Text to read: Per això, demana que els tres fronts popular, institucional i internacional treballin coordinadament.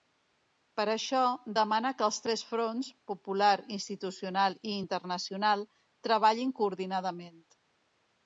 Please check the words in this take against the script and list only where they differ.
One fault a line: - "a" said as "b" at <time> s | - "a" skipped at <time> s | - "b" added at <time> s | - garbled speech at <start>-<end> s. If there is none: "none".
none